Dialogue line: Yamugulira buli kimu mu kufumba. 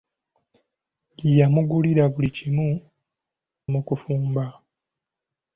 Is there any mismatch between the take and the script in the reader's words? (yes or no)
no